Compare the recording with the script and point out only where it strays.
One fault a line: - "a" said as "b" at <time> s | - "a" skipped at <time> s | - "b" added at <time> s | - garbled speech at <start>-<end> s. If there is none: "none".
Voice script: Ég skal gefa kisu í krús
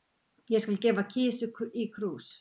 none